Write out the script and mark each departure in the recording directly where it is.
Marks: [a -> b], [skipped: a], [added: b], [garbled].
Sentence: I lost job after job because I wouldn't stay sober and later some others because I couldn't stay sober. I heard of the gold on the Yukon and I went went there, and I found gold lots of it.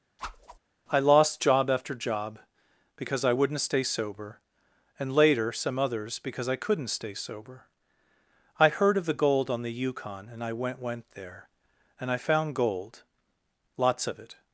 I lost job after job because I wouldn't stay sober and later some others because I couldn't stay sober. I heard of the gold on the Yukon and I went went there, and I found gold lots of it.